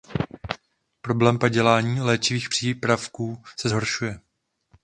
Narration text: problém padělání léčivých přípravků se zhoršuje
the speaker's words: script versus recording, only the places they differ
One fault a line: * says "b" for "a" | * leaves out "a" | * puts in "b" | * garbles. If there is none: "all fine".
all fine